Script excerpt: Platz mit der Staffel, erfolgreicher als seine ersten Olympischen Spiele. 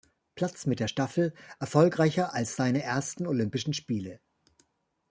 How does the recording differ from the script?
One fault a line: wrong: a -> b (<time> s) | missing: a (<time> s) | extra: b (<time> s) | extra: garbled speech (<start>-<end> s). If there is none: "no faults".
no faults